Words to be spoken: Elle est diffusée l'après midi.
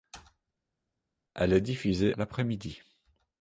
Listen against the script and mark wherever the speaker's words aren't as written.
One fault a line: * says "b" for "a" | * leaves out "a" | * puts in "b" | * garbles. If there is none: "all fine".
all fine